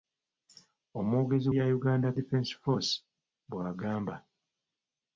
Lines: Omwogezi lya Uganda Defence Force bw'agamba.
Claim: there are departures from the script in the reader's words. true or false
false